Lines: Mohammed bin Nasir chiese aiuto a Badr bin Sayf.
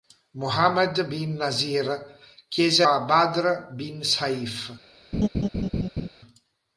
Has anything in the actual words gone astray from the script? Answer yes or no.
yes